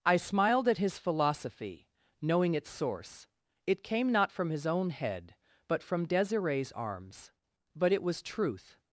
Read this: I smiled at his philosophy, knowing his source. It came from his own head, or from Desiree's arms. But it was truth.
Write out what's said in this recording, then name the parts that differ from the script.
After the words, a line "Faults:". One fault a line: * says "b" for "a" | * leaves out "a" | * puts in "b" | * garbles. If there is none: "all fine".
I smiled at his philosophy, knowing its source. It came not from his own head, but from Desiree's arms. But it was truth.
Faults:
* says "its" for "his"
* puts in "not"
* says "but" for "or"